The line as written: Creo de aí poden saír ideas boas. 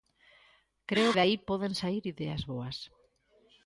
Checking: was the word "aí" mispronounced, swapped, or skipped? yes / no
no